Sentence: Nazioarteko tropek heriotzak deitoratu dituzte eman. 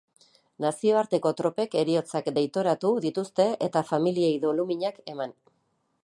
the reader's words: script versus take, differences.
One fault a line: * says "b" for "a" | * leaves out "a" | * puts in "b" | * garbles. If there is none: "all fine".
* puts in "eta familiei doluminak"